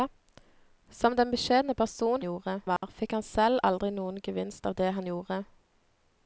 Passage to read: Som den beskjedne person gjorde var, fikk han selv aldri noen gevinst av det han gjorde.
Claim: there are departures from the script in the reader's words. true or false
false